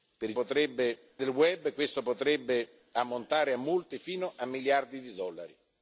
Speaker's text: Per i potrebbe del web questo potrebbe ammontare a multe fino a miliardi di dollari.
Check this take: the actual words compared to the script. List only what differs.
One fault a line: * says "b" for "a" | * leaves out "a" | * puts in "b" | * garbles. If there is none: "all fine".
all fine